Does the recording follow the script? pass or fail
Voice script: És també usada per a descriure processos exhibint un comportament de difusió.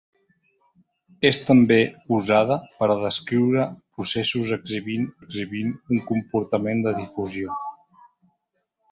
fail